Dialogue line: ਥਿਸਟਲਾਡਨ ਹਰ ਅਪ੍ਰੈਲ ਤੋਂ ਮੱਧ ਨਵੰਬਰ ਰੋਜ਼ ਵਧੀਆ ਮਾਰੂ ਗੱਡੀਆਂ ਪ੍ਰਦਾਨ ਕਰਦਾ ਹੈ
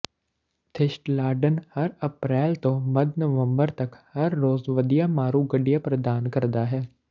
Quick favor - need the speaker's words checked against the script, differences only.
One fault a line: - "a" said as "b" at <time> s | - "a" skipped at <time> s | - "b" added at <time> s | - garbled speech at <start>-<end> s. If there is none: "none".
- "ਤੱਕ ਹਰ" added at 3.8 s